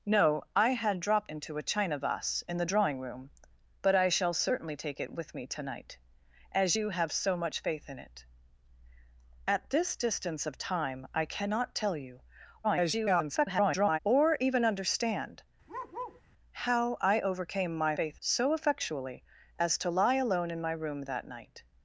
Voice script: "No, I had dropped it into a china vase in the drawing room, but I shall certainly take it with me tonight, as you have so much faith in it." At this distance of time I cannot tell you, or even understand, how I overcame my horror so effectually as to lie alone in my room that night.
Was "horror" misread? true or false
true